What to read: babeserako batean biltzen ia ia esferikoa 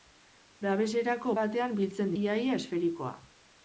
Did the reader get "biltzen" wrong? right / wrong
right